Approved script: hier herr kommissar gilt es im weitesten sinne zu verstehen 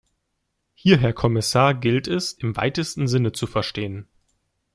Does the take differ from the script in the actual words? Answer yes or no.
no